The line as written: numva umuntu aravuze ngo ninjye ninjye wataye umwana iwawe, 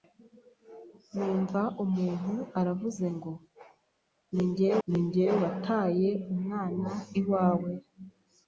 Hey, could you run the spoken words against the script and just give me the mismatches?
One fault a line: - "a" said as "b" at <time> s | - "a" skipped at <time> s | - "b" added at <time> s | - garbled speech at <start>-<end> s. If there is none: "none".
none